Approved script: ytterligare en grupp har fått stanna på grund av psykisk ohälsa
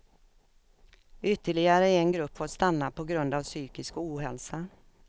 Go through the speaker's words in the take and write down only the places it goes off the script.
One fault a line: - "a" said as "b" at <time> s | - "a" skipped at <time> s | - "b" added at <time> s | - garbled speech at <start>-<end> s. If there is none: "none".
- "har" skipped at 2.4 s